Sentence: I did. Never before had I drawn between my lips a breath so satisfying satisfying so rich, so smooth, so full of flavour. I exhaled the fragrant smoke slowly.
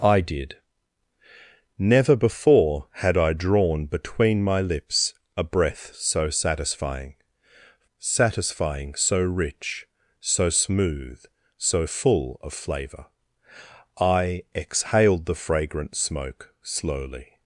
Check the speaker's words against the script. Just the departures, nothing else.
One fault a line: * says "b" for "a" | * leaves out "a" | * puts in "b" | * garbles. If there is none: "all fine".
all fine